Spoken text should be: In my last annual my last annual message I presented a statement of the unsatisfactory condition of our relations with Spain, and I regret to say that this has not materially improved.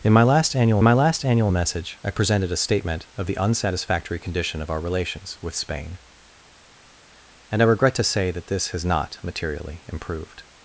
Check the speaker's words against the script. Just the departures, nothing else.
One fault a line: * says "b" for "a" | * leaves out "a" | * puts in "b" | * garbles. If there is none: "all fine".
all fine